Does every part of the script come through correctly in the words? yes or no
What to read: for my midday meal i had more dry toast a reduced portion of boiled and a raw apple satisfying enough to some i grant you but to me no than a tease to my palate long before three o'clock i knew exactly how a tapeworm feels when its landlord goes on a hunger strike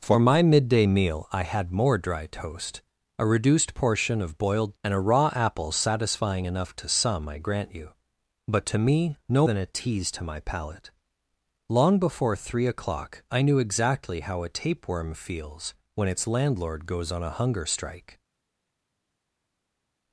yes